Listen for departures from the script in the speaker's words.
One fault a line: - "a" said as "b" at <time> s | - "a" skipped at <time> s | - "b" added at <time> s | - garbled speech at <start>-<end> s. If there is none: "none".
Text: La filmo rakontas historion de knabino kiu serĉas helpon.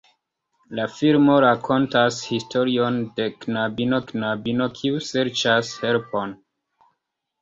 - "knabino" added at 4.1 s